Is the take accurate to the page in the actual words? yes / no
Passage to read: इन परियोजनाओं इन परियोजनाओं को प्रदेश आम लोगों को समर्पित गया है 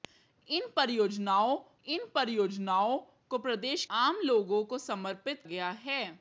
yes